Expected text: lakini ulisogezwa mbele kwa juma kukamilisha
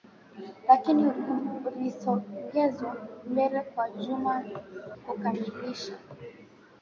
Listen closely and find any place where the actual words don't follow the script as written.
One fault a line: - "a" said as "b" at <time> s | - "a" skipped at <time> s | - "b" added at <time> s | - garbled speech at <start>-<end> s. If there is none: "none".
none